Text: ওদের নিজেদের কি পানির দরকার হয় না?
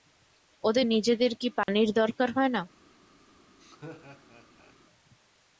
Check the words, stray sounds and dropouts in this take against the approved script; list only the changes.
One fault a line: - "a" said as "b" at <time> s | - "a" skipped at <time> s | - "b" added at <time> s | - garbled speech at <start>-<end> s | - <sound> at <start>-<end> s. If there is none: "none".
- dropout at 1.6-1.7 s
- laugh at 3.6-4.7 s